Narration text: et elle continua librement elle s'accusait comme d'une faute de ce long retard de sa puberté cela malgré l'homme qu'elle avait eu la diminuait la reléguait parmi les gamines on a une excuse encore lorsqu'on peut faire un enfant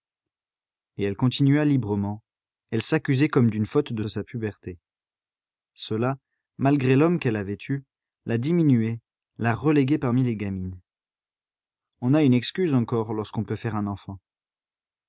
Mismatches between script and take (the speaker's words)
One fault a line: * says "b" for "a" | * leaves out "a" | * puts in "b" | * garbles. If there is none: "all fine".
* leaves out "ce long retard"